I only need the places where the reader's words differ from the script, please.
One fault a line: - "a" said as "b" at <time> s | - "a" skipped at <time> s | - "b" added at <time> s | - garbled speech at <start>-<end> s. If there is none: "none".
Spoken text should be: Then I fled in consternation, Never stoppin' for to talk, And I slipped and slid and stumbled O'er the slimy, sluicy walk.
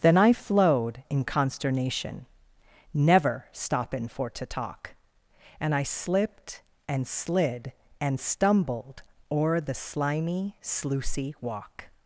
- "fled" said as "flowed" at 0.3 s